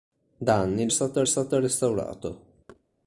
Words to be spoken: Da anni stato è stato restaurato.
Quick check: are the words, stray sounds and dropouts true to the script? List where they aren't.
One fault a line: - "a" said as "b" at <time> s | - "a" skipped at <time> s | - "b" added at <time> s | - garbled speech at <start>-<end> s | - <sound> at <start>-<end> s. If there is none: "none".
- thud at 2.7-2.8 s